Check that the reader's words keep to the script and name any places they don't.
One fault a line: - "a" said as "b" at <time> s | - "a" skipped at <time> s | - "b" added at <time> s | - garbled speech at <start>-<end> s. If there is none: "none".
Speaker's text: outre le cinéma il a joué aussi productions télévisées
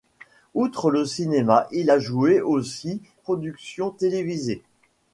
none